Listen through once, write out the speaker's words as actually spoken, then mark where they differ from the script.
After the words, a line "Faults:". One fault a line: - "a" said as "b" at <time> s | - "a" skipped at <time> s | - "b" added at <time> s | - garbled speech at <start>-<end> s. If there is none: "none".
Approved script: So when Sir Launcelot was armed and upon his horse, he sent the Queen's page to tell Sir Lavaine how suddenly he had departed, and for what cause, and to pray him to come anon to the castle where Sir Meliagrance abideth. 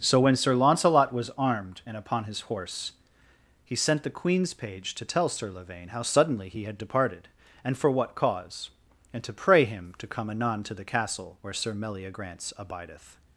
So when Sir Launcelot was armed and upon his horse, he sent the Queen's page to tell Sir Lavaine how suddenly he had departed, and for what cause, and to pray him to come anon to the castle where Sir Meliagrance abideth.
Faults:
none